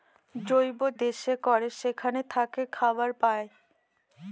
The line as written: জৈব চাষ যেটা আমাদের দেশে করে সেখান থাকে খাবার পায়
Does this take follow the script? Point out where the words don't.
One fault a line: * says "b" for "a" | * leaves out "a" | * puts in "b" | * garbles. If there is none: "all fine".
* leaves out "চাষ যেটা আমাদের"